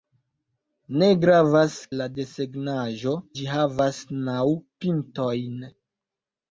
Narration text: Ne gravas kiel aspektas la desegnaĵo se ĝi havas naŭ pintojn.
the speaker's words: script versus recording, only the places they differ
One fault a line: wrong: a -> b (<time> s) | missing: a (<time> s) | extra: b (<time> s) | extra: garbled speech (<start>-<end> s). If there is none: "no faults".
missing: kiel aspektas (1.7 s)
missing: se (3.1 s)